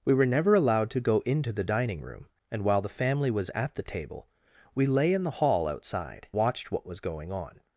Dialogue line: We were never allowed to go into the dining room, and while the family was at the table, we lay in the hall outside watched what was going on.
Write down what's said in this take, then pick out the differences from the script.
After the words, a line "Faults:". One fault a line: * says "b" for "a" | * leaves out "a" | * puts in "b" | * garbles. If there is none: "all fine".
We were never allowed to go into the dining room, and while the family was at the table, we lay in the hall outside watched what was going on.
Faults:
all fine